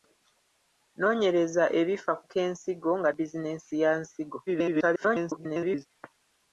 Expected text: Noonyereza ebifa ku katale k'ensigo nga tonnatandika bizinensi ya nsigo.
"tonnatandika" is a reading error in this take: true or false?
true